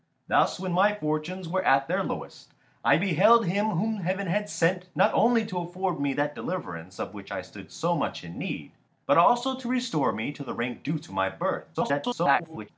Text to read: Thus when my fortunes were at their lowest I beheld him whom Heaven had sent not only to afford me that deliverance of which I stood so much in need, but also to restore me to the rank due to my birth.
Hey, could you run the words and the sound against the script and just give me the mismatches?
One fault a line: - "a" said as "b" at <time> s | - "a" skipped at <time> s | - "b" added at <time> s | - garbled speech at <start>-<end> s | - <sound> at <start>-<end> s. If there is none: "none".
- garbled speech at 11.7-12.7 s